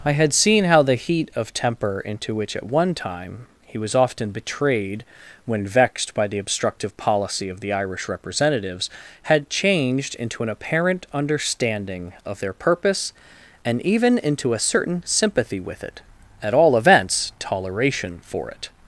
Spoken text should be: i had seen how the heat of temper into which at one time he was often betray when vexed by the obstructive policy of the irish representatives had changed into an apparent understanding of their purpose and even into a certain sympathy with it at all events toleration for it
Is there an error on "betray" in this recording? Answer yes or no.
yes